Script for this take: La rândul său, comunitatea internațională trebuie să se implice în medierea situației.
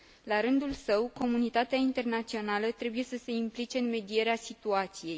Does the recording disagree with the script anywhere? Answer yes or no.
no